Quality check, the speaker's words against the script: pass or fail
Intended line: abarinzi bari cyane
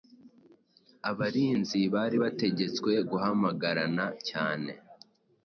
fail